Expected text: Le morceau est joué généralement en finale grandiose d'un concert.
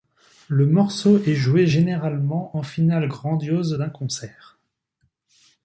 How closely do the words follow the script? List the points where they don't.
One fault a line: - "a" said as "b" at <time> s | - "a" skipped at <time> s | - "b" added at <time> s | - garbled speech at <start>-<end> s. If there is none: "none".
none